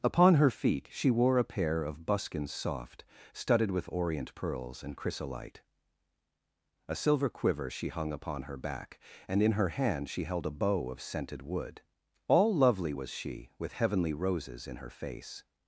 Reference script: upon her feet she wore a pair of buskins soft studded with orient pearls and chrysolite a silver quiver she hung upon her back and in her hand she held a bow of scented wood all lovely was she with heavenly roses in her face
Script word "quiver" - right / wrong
right